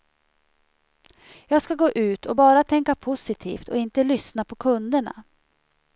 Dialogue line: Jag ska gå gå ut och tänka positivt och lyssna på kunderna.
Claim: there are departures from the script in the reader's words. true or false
true